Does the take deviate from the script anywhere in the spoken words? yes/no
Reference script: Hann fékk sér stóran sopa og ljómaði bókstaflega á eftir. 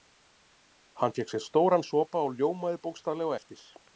no